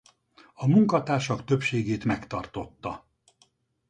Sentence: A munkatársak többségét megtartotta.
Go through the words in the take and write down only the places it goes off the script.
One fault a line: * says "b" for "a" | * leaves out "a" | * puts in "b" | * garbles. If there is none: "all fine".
all fine